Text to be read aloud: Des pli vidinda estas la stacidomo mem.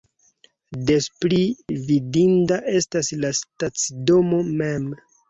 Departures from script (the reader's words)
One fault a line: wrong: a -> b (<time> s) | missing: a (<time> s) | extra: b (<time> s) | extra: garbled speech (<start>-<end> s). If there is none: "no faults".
no faults